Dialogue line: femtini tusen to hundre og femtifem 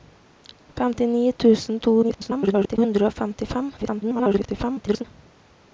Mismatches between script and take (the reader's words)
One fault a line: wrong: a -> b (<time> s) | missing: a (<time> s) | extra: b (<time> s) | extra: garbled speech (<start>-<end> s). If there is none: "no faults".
extra: garbled speech (2.0-2.8 s)
extra: garbled speech (3.8-5.0 s)